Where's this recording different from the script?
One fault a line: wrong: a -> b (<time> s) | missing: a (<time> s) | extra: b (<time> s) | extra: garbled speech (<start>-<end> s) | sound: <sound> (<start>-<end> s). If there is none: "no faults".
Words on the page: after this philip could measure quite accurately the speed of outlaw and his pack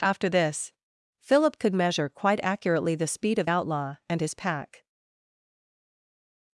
no faults